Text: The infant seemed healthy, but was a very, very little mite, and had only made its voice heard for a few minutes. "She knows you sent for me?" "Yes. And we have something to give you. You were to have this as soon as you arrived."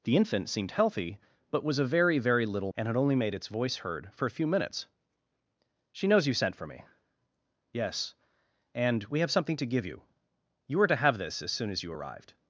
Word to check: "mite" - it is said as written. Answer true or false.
false